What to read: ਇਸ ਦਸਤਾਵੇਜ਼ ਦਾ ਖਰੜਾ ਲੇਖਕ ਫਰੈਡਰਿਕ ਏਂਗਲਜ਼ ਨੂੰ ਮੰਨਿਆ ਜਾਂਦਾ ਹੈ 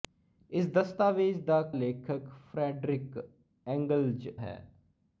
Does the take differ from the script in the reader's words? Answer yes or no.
yes